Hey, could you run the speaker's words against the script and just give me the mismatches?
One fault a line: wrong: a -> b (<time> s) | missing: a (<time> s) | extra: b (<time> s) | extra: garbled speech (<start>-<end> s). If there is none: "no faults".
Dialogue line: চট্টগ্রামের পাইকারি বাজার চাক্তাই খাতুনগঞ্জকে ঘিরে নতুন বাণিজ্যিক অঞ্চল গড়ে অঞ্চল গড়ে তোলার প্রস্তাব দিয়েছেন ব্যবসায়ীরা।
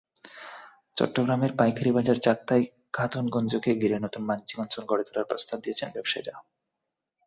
missing: অঞ্চল গড়ে (5.0 s)